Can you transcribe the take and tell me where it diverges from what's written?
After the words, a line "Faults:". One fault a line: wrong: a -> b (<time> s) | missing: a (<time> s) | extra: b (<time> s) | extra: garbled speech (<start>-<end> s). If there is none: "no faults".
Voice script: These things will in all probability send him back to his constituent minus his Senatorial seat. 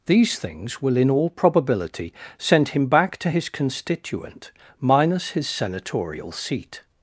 These things will in all probability send him back to his constituent minus his Senatorial seat.
Faults:
no faults